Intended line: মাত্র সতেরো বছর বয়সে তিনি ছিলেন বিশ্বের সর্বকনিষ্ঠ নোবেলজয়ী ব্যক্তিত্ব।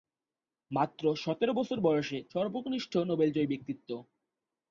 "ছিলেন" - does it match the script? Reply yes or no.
no